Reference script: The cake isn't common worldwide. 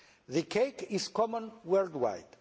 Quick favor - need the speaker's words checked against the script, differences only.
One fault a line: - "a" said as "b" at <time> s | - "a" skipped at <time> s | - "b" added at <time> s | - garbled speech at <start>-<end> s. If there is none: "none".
- "isn't" said as "is" at 0.9 s